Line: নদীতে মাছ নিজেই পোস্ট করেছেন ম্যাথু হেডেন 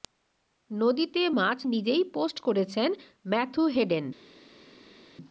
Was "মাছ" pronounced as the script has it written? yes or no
yes